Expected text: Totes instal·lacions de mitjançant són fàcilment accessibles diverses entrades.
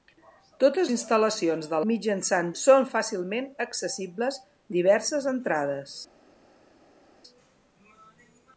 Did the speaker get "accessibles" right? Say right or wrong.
right